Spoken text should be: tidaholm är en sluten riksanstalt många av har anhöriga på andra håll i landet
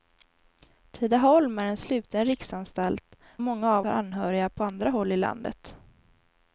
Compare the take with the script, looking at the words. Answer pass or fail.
pass